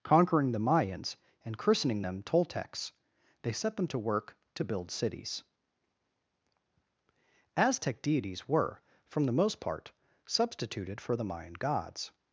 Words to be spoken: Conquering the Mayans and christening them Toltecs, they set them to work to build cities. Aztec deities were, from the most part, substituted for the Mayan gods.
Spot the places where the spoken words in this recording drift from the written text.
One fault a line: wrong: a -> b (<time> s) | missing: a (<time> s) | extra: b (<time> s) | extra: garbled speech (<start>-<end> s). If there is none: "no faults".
no faults